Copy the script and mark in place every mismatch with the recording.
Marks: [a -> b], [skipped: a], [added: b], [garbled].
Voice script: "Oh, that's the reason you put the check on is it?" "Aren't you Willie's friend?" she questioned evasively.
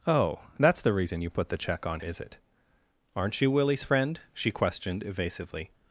"Oh, that's the reason you put the check on is it?" "Aren't you Willie's friend?" she questioned evasively.